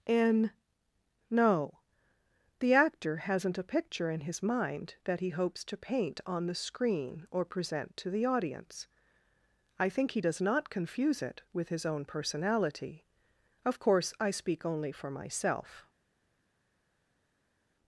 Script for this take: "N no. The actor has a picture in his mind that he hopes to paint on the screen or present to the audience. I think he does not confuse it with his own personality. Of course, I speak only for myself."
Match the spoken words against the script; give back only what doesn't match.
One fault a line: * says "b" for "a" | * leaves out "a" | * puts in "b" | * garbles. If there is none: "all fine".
* says "hasn't" for "has"